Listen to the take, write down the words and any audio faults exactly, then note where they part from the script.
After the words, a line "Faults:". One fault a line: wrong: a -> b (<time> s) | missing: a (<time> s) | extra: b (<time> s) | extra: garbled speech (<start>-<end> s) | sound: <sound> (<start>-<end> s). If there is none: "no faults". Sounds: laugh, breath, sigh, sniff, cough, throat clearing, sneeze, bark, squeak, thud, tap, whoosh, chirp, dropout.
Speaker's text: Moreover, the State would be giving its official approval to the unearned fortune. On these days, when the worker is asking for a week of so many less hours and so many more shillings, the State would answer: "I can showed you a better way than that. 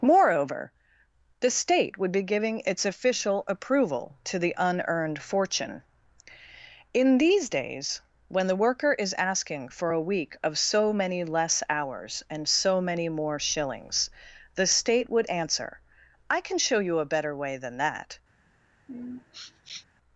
Moreover, the State would be giving its official approval to the unearned fortune. In these days, when the worker is asking for a week of so many less hours and so many more shillings, the State would answer: "I can show you a better way than that.
Faults:
wrong: On -> In (6.9 s)
wrong: showed -> show (16.6 s)
sound: sniff (18.9-19.9 s)